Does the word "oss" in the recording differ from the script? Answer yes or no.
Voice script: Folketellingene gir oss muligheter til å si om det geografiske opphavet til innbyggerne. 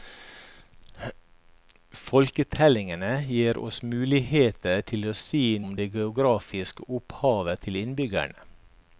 no